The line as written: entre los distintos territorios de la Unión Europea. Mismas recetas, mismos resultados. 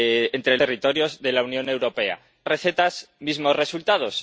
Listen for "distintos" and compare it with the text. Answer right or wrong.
wrong